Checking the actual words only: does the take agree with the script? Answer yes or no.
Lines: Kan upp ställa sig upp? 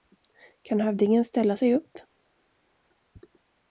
no